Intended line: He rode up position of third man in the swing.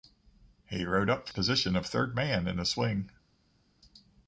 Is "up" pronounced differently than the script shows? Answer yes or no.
no